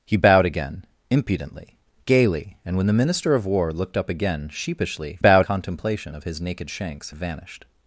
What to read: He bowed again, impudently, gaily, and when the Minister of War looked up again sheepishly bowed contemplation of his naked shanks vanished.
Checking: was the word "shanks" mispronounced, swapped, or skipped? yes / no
no